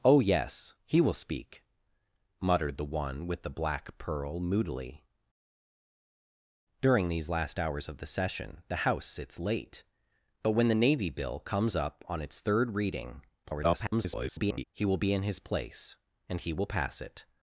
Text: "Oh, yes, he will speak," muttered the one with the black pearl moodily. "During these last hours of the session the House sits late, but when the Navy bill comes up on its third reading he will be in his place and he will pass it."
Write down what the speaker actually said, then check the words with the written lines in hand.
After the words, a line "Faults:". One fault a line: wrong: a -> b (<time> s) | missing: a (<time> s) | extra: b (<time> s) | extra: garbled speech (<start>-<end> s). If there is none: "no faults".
"Oh, yes, he will speak," muttered the one with the black pearl moodily. "During these last hours of the session the House sits late, but when the Navy bill comes up on its third reading [garbled] he will be in his place and he will pass it."
Faults:
extra: garbled speech (13.4-14.6 s)